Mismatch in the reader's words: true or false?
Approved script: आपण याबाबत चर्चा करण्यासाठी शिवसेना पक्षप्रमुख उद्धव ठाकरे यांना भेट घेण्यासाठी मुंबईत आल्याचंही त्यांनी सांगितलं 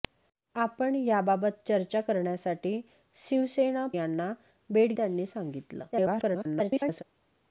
true